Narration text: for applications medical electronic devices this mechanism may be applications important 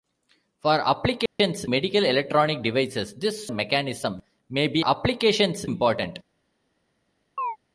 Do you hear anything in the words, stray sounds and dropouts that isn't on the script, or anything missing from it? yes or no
yes